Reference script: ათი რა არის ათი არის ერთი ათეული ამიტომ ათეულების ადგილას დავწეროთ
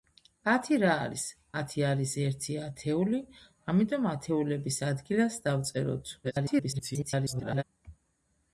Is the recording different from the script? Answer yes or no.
yes